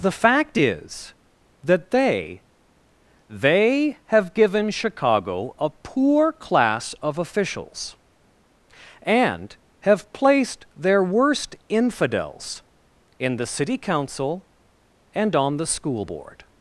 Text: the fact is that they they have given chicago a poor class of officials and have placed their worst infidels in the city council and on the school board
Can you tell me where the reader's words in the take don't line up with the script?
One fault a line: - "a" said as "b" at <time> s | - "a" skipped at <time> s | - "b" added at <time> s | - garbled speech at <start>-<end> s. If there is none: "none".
none